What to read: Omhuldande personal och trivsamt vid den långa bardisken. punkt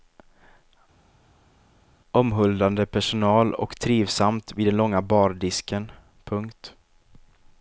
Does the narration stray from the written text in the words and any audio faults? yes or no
no